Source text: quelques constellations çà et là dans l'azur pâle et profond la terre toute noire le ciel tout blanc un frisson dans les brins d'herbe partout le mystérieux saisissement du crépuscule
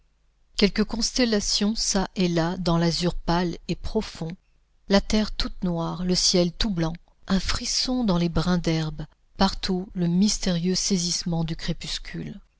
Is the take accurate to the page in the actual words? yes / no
yes